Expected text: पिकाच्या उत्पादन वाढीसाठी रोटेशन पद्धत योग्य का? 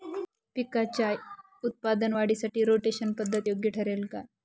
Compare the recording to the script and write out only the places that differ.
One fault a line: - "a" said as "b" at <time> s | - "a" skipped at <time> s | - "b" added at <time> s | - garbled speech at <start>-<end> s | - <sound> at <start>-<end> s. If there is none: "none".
- "ठरेल" added at 3.7 s